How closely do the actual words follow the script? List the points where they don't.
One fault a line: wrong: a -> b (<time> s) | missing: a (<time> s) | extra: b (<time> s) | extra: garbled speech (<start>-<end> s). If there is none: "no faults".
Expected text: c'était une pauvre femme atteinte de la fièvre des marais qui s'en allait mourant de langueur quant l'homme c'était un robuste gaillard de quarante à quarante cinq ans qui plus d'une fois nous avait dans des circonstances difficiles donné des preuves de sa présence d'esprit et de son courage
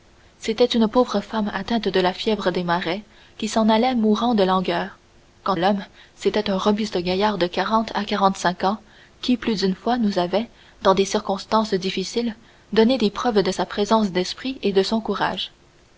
no faults